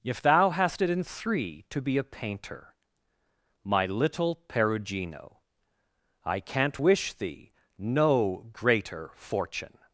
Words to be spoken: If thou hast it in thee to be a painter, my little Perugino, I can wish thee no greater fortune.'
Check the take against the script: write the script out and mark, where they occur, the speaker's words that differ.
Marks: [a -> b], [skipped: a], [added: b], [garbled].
If thou hast it in [thee -> three] to be a painter, my little Perugino, I [can -> can't] wish thee no greater fortune.'